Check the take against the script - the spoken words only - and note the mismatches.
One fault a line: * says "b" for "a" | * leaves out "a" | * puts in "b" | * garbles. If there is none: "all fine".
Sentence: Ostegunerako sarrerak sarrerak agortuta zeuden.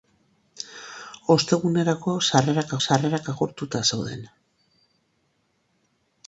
all fine